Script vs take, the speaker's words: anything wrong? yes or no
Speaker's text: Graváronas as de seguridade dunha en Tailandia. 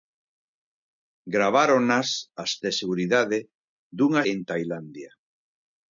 no